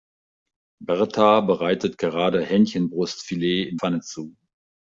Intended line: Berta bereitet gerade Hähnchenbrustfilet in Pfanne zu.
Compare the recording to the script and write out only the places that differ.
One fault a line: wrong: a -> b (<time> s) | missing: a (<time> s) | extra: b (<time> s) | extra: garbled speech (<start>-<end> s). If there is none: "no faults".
no faults